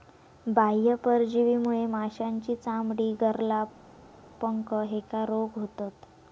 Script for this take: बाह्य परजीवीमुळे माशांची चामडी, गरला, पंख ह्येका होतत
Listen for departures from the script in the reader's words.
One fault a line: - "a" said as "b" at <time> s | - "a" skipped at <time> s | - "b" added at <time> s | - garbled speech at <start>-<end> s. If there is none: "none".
- "रोग" added at 5.3 s